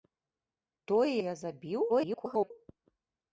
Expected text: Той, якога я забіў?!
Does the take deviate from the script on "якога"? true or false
true